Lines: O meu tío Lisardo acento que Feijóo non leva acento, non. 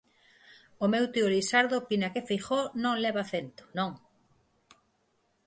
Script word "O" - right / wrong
right